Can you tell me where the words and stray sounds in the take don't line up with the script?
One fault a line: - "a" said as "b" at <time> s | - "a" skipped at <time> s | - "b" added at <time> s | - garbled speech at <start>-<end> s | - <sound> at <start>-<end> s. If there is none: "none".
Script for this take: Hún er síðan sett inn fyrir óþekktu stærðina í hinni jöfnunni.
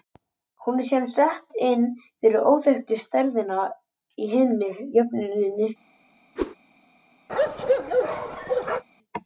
- whoosh at 6.4-6.6 s
- bark at 7.3-8.8 s